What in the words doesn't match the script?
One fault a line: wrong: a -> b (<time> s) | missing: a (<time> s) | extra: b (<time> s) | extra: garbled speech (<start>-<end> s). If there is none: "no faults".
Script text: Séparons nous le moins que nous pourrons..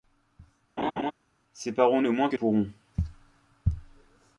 missing: nous (2.0 s)
missing: nous (2.3 s)